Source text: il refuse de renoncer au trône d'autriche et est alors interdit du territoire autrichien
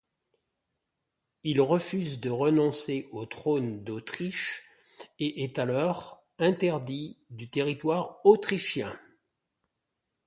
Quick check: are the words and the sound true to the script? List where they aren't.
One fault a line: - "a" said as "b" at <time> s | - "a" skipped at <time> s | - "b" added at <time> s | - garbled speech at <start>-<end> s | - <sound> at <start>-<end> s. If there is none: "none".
none